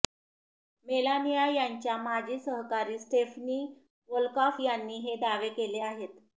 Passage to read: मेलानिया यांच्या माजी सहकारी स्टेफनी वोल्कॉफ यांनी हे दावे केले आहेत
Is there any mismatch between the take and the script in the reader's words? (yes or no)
no